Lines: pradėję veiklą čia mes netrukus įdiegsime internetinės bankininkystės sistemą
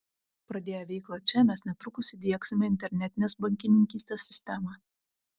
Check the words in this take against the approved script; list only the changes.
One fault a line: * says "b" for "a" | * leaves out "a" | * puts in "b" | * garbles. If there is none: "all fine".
all fine